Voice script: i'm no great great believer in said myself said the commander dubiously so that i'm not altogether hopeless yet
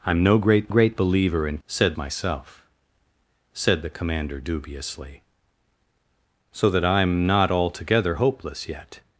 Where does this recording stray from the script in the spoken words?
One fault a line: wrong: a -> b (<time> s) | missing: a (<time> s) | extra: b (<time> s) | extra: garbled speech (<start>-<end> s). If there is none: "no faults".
no faults